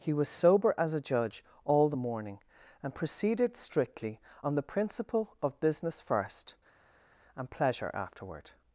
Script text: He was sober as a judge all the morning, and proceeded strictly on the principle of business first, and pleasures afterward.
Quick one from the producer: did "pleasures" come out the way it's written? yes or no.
no